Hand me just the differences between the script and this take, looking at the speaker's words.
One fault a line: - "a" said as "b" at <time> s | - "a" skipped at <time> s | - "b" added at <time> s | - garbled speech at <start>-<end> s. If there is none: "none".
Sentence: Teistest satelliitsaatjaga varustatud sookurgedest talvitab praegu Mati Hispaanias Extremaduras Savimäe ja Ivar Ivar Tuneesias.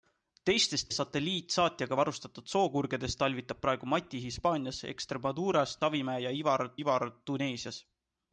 none